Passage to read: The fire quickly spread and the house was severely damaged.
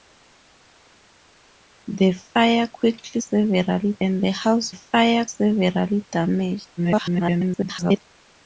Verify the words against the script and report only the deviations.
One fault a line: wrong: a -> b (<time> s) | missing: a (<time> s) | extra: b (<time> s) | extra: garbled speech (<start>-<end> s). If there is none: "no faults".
wrong: spread -> severely (3.2 s)
wrong: was -> fire (4.7 s)
extra: garbled speech (6.8-8.0 s)